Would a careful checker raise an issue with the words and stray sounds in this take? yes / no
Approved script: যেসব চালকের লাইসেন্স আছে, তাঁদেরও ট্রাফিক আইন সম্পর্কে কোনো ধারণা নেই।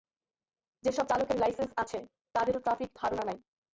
yes